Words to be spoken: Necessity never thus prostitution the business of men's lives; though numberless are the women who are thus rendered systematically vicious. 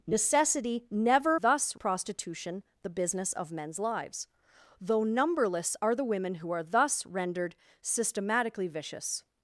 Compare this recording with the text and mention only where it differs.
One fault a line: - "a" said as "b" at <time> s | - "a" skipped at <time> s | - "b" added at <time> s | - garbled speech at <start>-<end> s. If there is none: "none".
none